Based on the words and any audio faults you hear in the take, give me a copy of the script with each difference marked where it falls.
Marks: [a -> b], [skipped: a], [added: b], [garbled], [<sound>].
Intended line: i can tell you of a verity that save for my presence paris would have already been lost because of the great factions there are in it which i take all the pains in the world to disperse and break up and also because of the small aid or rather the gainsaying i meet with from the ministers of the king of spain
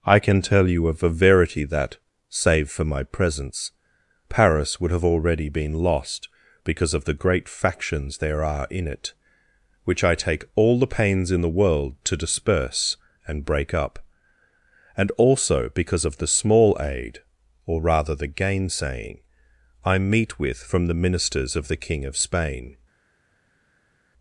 i can tell you of a verity that save for my presence paris would have already been lost because of the great factions there are in it which i take all the pains in the world to disperse and break up and also because of the small aid or rather the gainsaying i meet with from the ministers of the king of spain